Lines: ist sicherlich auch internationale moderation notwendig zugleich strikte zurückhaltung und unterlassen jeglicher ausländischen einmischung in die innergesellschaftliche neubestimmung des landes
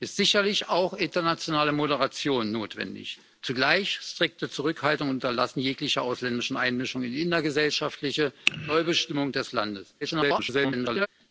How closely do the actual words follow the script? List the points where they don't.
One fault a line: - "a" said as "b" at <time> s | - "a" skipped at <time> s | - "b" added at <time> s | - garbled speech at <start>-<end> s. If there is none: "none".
- garbled speech at 10.0-11.1 s